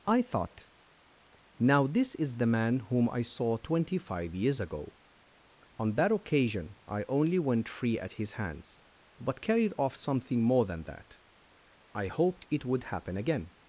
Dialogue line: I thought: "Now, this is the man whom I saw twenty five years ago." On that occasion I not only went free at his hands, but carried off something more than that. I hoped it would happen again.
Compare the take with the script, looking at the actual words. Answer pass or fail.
fail